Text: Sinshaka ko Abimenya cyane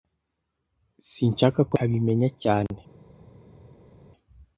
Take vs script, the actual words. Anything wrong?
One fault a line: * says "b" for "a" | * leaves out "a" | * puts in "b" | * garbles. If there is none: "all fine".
all fine